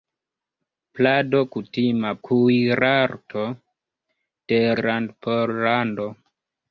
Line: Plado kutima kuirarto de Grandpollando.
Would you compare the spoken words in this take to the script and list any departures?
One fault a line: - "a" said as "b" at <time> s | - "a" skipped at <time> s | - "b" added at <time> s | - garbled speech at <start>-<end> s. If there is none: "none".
none